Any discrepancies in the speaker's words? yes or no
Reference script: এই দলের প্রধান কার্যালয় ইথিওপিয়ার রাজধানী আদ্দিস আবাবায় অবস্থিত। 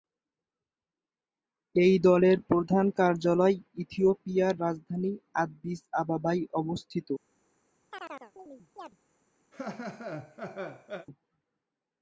no